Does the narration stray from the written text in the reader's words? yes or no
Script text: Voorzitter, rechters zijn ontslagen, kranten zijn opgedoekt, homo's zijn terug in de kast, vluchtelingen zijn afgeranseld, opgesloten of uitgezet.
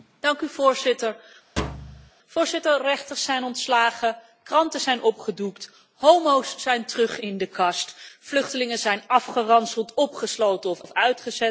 yes